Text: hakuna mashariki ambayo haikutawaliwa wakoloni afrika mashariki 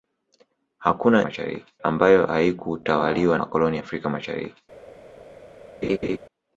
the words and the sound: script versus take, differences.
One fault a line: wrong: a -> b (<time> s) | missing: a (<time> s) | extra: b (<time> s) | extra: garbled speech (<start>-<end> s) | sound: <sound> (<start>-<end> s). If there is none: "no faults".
sound: laugh (5.8-6.2 s)